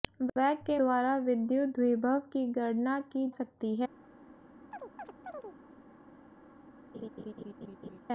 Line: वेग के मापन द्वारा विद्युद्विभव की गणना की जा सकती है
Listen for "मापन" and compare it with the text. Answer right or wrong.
wrong